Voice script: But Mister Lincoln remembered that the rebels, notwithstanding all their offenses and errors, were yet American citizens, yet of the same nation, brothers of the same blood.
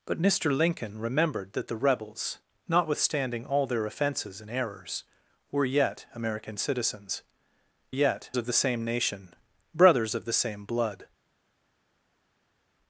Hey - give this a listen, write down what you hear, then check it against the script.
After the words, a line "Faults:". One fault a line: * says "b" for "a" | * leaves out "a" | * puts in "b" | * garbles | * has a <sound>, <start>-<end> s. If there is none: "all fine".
But Mister Lincoln remembered that the rebels, notwithstanding all their offenses and errors, were yet American citizens, yet of the same nation, brothers of the same blood.
Faults:
all fine